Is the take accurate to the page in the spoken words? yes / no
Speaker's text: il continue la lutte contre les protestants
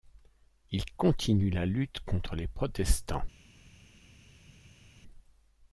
yes